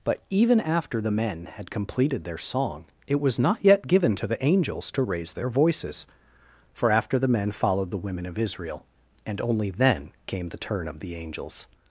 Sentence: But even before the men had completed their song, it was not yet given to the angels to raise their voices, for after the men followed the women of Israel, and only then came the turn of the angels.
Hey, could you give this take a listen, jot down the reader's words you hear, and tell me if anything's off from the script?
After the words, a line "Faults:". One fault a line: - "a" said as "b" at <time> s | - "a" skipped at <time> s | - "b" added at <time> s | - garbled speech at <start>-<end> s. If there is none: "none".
But even after the men had completed their song, it was not yet given to the angels to raise their voices, for after the men followed the women of Israel, and only then came the turn of the angels.
Faults:
- "before" said as "after" at 0.6 s